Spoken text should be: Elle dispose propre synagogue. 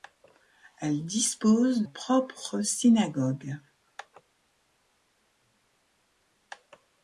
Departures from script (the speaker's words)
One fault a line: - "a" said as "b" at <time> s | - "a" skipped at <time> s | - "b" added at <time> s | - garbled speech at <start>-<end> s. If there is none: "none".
none